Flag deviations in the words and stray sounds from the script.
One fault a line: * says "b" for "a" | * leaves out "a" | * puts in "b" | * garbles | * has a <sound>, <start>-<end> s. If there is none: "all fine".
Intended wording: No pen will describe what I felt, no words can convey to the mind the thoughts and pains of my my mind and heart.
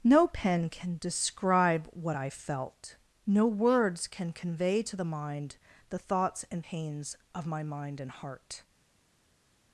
* says "can" for "will"
* leaves out "my"